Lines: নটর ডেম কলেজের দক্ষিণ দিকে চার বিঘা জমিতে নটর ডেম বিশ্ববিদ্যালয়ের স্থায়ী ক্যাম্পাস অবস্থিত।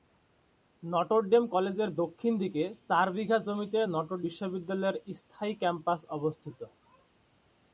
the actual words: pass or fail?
fail